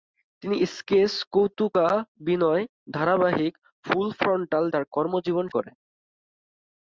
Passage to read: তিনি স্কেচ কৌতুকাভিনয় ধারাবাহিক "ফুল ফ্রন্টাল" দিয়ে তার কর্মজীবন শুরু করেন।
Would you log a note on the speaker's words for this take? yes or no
yes